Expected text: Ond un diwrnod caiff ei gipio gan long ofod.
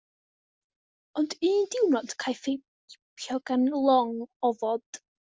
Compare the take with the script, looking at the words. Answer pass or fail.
pass